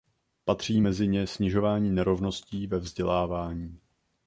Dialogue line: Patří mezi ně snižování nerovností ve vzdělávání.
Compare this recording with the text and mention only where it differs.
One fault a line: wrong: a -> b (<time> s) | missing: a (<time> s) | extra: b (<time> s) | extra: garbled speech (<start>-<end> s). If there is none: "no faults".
no faults